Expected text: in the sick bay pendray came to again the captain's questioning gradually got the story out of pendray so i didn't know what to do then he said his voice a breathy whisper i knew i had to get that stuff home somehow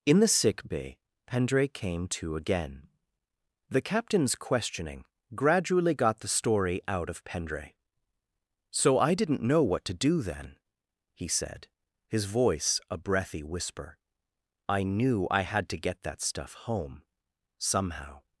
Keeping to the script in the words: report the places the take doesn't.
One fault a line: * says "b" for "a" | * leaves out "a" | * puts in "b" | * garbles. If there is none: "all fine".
all fine